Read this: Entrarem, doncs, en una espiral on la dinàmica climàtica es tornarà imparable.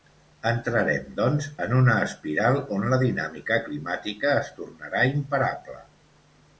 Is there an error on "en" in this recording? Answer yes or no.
no